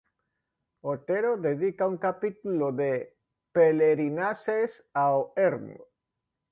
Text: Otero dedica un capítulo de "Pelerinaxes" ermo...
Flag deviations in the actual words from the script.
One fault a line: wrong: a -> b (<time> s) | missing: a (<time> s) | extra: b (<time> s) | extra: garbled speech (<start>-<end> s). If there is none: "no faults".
extra: ao (4.9 s)